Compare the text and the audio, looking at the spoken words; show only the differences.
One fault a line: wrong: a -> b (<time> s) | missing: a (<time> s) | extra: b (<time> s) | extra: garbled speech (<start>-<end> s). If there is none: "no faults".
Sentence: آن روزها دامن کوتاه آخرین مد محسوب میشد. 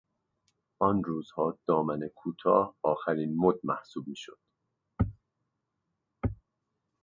no faults